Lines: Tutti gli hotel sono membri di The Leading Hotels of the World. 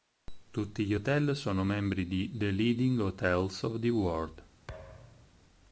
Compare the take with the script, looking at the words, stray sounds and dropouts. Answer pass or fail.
fail